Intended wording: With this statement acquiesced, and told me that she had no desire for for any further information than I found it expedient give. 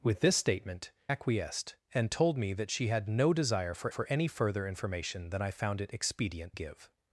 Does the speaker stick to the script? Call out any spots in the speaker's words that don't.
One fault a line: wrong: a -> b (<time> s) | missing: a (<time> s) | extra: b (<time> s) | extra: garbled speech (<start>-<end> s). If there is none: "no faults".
no faults